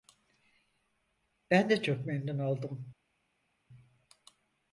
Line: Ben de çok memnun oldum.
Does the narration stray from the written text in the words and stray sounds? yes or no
no